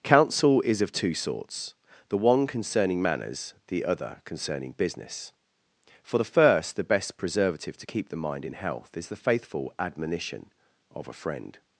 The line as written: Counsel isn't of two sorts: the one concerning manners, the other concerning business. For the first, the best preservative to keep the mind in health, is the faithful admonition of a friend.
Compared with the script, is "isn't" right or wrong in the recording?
wrong